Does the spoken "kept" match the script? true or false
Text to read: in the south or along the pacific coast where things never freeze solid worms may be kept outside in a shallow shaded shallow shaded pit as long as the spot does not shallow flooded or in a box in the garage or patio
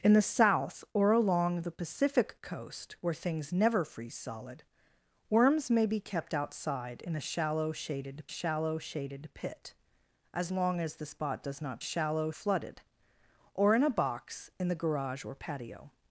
true